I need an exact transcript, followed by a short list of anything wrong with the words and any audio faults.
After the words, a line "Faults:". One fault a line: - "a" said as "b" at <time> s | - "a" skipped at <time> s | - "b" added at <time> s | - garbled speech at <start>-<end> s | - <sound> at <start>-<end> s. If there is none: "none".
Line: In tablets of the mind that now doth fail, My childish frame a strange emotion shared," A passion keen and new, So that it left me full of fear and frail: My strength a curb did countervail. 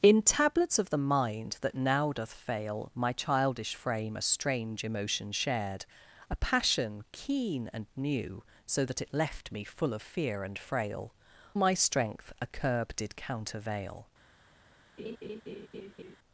In tablets of the mind that now doth fail, My childish frame a strange emotion shared," A passion keen and new, So that it left me full of fear and frail: My strength a curb did countervail.
Faults:
- laugh at 15.0-16.2 s